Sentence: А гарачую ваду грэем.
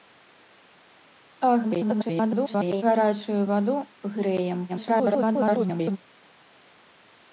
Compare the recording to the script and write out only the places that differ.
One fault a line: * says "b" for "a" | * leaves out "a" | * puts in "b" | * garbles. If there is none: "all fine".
* garbles
* garbles